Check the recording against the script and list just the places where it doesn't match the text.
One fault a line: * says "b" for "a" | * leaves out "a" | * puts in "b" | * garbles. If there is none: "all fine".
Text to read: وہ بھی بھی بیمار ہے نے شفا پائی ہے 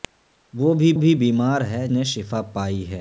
all fine